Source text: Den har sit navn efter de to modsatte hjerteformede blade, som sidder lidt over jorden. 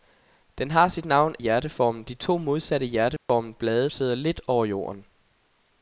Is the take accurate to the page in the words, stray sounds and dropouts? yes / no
no